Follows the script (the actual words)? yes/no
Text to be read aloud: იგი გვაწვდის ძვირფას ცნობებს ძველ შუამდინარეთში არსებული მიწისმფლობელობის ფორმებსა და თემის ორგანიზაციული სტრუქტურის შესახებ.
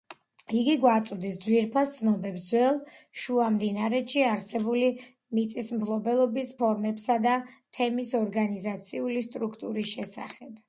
yes